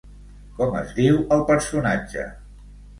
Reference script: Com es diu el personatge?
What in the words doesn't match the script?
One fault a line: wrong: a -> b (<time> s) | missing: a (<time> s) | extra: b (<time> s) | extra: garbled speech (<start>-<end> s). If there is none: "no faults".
no faults